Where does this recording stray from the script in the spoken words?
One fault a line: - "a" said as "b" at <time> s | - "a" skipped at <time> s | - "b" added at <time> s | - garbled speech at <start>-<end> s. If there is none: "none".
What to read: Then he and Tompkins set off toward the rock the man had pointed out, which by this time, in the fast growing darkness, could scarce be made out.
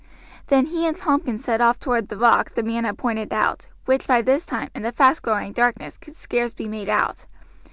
none